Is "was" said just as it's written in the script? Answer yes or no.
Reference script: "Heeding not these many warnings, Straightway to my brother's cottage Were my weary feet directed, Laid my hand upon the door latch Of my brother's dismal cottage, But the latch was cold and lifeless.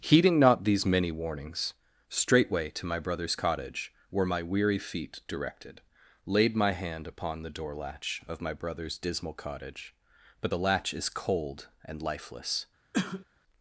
no